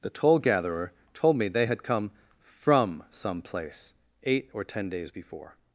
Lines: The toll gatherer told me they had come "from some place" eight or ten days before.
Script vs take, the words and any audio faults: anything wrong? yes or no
no